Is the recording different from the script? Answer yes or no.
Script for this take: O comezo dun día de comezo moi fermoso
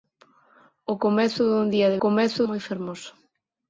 no